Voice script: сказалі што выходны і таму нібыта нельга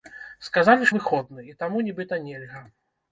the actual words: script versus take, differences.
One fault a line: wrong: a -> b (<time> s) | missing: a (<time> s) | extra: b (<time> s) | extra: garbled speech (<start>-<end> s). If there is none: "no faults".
missing: што (0.9 s)